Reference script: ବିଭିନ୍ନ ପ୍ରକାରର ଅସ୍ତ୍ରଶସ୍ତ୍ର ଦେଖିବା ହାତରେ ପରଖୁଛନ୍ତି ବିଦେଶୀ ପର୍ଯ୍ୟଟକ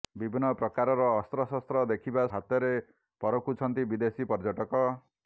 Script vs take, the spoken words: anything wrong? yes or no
no